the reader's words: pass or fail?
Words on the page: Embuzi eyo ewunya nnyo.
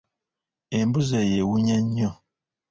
pass